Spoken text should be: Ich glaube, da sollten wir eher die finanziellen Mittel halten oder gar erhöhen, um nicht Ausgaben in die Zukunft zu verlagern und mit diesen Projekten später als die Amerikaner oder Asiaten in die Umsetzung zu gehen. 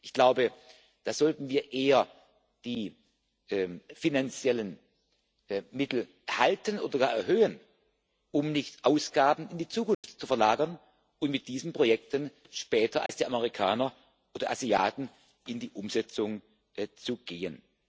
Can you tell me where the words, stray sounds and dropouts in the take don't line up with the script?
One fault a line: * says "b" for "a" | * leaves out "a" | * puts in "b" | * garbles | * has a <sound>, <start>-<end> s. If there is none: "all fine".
* has a dropout, 9.9-10.0 s
* has a dropout, 13.1-13.1 s